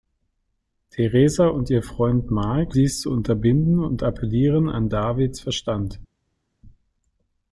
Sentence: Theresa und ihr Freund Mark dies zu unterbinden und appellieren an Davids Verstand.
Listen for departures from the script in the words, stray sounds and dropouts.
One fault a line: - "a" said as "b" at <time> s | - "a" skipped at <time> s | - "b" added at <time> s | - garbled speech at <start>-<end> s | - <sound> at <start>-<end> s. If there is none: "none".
none